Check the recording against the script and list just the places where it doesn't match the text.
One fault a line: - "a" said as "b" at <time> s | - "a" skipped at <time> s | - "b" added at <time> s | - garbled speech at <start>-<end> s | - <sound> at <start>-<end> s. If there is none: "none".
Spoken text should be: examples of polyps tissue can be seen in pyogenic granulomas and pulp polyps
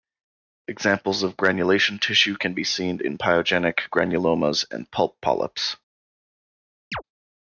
- "polyps" said as "granulation" at 1.4 s
- chirp at 6.9-7.0 s